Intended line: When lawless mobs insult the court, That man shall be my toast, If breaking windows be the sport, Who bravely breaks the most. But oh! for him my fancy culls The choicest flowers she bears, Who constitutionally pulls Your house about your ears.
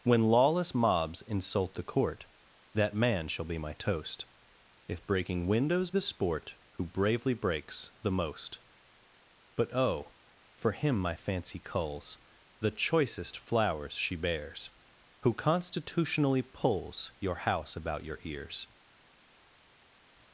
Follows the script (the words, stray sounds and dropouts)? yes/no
no